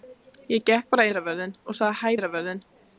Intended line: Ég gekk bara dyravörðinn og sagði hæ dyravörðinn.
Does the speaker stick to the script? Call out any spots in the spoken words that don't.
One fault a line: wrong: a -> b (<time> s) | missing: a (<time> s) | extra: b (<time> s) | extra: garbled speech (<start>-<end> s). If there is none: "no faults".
no faults